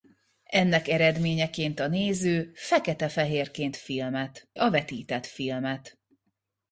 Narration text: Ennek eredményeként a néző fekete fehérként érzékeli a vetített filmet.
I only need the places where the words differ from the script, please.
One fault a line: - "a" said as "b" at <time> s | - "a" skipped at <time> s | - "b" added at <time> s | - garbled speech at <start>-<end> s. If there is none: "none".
- "érzékeli" said as "filmet" at 3.7 s